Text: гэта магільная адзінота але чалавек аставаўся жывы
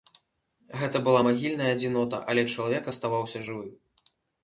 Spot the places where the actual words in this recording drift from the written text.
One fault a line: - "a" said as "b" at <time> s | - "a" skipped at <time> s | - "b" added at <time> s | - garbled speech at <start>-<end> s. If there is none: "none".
- "была" added at 1.1 s